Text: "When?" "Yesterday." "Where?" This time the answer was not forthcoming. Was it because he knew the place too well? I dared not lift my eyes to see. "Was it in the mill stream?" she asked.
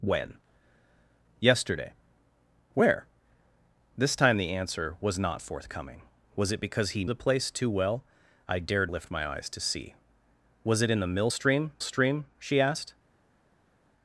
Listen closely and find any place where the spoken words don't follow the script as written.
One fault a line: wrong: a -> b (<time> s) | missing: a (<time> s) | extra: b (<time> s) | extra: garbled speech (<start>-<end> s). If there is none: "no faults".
missing: knew (7.0 s)
missing: not (8.9 s)
extra: stream (11.8 s)